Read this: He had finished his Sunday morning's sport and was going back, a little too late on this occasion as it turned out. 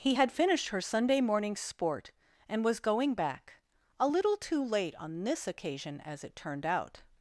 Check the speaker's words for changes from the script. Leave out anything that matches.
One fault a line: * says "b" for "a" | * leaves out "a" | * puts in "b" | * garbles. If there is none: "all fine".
* says "her" for "his"